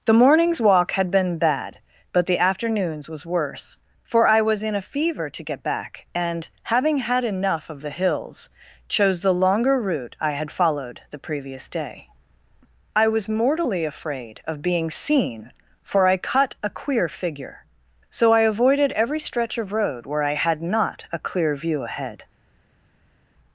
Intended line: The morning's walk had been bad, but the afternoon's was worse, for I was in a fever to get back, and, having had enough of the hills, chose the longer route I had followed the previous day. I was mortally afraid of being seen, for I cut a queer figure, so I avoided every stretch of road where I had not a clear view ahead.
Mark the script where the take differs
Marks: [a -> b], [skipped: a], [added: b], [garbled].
The morning's walk had been bad, but the afternoon's was worse, for I was in a fever to get back, and, having had enough of the hills, chose the longer route I had followed the previous day. I was mortally afraid of being seen, for I cut a queer figure, so I avoided every stretch of road where I had not a clear view ahead.